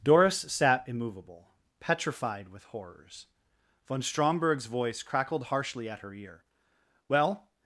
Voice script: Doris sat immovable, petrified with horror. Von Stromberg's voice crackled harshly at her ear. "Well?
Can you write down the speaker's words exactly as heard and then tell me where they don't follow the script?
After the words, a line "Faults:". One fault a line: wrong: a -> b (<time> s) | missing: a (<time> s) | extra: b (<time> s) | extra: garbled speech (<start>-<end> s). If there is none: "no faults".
Doris sat immovable, petrified with horrors. Von Stromberg's voice crackled harshly at her ear. "Well?
Faults:
wrong: horror -> horrors (2.6 s)